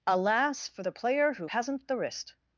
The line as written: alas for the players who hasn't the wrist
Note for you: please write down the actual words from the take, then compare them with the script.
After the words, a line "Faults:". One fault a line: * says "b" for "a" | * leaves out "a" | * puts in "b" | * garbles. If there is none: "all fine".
alas for the player who hasn't the wrist
Faults:
* says "player" for "players"